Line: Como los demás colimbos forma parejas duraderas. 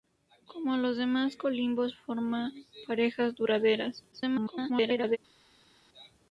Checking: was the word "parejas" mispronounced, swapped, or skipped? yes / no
no